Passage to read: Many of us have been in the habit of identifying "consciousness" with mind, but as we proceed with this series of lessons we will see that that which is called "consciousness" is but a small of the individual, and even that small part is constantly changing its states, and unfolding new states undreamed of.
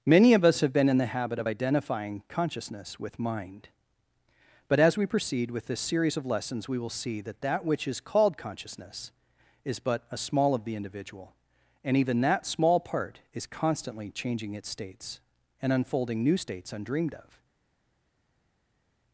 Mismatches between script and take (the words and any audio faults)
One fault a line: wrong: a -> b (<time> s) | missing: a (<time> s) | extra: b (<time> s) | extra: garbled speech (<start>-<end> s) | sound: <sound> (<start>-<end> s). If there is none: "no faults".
no faults